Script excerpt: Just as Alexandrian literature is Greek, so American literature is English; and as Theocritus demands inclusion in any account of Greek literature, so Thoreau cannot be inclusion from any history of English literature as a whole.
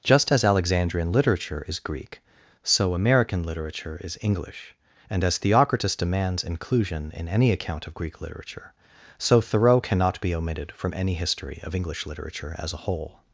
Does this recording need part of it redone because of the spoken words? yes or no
yes